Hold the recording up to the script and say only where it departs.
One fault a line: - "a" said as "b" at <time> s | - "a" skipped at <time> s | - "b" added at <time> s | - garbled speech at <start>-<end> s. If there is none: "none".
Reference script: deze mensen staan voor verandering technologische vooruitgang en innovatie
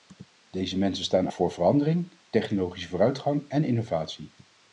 none